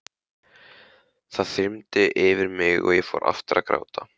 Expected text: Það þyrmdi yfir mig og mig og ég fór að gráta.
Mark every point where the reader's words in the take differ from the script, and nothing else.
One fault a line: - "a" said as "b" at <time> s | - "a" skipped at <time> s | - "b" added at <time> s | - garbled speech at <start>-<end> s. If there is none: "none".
- "mig og" skipped at 3.0 s
- "aftur" added at 3.3 s